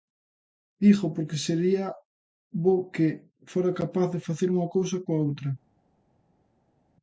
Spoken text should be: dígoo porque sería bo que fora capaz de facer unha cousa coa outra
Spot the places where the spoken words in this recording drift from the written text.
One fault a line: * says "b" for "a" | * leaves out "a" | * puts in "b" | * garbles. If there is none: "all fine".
all fine